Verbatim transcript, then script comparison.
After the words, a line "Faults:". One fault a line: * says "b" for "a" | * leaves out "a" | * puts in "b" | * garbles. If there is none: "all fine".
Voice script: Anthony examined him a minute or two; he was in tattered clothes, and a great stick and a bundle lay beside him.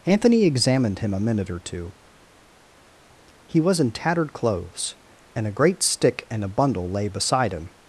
Anthony examined him a minute or two; he was in tattered clothes, and a great stick and a bundle lay beside him.
Faults:
all fine